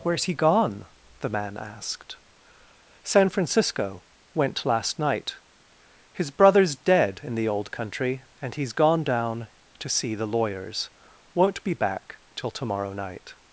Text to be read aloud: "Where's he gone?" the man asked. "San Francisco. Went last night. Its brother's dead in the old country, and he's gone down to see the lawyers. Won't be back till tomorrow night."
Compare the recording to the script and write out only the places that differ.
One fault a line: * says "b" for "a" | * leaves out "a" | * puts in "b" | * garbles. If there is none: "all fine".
* says "His" for "Its"